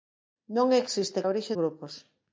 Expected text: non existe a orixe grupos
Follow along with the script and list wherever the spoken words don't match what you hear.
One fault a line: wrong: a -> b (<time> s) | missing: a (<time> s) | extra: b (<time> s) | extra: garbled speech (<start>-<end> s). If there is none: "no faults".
no faults